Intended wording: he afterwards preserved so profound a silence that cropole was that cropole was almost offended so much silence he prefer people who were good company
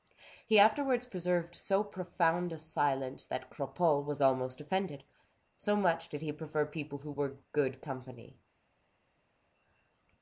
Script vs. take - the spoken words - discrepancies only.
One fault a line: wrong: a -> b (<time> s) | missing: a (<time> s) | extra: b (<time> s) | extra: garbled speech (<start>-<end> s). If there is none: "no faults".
missing: that cropole was (4.2 s)
wrong: silence -> did (6.1 s)